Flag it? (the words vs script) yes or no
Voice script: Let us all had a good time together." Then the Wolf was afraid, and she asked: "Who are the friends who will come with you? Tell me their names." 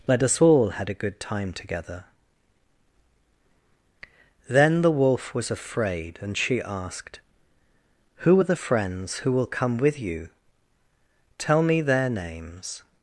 no